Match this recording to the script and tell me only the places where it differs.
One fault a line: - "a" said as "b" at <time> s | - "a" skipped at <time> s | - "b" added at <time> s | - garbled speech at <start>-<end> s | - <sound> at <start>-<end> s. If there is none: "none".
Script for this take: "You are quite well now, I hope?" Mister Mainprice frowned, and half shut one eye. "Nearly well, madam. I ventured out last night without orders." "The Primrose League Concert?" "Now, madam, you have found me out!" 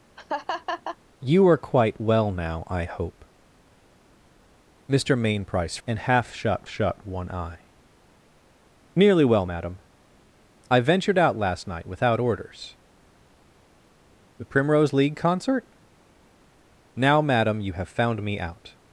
- laugh at 0.2-1.0 s
- "frowned" skipped at 5.8 s
- "shut" added at 6.7 s